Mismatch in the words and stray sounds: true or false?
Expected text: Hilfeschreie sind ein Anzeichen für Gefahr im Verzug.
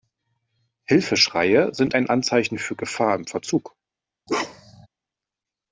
true